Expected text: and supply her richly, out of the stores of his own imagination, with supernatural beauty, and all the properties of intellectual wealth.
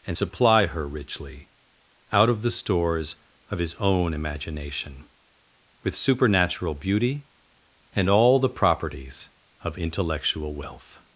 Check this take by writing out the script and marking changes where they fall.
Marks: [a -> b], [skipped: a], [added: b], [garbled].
and supply her richly, out of the stores of his own imagination, with supernatural beauty, and all the properties of intellectual wealth.